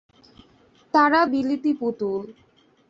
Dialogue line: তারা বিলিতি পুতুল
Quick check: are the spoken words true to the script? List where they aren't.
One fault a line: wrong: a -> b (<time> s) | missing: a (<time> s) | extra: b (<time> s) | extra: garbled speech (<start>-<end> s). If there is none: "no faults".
no faults